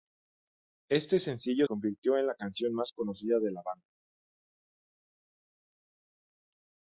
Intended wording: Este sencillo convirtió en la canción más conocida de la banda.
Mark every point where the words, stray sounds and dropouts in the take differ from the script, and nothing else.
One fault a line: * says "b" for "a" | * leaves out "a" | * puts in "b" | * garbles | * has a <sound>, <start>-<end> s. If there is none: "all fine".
all fine